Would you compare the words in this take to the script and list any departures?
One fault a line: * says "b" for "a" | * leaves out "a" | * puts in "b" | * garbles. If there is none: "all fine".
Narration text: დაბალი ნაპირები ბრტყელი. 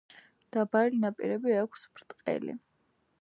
* puts in "აქვს"